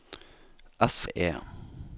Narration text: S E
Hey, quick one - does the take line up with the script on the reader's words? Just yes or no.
yes